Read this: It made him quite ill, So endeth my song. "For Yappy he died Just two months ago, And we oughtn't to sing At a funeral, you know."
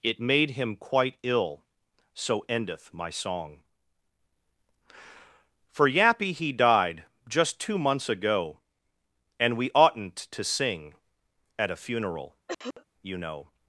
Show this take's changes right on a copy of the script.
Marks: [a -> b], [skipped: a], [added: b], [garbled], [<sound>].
It made him quite ill, So endeth my song. "For Yappy he died Just two months ago, And we oughtn't to sing At a funeral, [cough] you know."